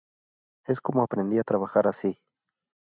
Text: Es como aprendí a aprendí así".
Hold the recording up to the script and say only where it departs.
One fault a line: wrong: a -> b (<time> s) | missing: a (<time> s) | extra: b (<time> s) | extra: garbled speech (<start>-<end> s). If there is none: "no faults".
wrong: aprendí -> trabajar (1.4 s)